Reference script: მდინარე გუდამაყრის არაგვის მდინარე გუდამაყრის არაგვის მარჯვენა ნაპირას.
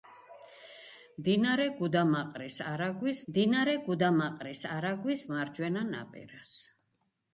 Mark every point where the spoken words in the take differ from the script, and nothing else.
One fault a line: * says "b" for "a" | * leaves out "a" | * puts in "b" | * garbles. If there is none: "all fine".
all fine